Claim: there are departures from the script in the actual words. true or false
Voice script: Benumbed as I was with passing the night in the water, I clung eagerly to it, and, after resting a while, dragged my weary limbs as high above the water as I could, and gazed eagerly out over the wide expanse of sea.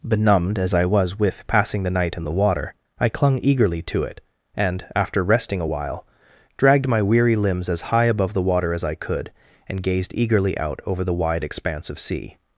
false